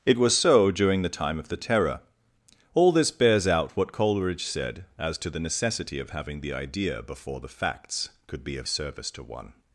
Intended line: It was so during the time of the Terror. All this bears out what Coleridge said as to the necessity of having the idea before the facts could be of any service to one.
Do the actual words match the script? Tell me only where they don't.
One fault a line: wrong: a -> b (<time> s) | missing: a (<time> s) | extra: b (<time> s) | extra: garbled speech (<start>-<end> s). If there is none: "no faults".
missing: any (8.7 s)